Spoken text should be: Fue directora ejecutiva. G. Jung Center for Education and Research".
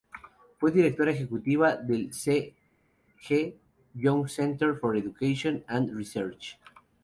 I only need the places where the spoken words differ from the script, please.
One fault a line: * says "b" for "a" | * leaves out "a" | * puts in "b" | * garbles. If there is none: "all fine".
* puts in "del C"